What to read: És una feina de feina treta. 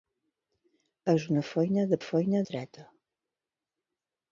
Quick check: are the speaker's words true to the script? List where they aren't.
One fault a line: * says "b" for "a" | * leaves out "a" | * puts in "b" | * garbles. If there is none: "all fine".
all fine